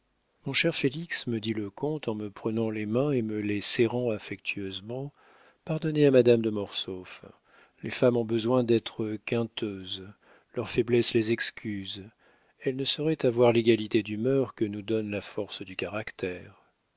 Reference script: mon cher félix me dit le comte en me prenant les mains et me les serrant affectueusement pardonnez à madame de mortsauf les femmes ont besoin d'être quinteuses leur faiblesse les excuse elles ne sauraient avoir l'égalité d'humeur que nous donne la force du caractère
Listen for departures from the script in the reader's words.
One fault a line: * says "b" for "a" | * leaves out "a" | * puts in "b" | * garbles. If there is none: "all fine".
all fine